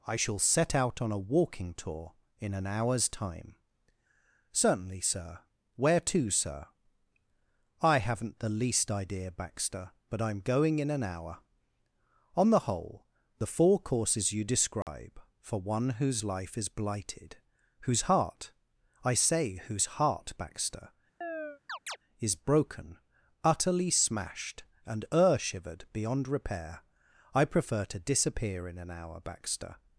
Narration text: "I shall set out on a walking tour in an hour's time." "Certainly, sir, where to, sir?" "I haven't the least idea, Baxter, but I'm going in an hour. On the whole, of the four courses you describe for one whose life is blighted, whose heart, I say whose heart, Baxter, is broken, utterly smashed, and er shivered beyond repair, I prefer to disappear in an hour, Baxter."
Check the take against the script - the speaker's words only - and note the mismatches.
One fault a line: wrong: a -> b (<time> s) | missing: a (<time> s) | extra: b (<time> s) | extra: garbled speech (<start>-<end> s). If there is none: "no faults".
missing: of (13.1 s)